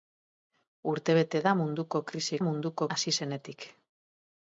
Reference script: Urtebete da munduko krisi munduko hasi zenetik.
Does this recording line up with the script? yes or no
yes